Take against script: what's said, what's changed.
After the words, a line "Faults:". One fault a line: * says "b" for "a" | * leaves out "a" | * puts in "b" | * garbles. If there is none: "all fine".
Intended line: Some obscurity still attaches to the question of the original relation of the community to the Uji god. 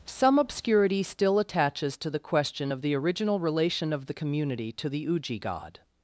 Some obscurity still attaches to the question of the original relation of the community to the Uji god.
Faults:
all fine